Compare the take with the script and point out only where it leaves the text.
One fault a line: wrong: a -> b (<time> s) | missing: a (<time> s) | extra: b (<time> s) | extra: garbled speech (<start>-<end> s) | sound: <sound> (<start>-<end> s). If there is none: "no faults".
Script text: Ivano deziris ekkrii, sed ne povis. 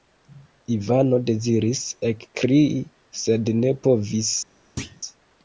sound: thud (4.8-5.0 s)